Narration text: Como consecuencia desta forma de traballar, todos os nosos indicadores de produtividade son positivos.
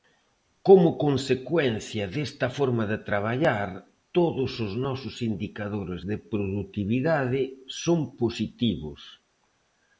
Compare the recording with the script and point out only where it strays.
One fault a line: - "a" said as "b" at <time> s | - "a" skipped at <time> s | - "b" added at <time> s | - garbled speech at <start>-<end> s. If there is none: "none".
none